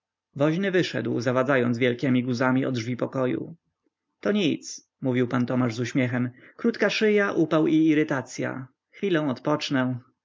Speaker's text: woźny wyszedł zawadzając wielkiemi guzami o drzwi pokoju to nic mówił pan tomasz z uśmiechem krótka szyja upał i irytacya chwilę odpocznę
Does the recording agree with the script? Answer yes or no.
yes